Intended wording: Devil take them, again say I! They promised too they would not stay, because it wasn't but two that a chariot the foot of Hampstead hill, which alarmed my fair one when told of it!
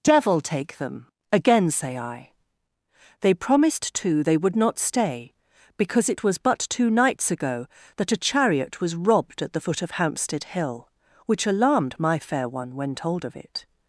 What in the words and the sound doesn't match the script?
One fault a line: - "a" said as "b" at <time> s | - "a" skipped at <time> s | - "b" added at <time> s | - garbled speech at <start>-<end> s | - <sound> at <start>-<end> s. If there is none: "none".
- "wasn't" said as "was" at 6.2 s
- "nights ago" added at 6.9 s
- "was robbed at" added at 8.8 s